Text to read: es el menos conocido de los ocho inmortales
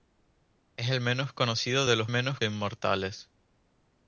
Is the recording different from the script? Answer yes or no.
yes